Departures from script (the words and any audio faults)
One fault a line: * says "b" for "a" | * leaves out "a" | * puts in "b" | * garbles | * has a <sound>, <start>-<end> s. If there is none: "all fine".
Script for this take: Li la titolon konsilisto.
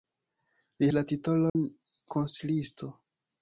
* has a dropout, 1.5-1.6 s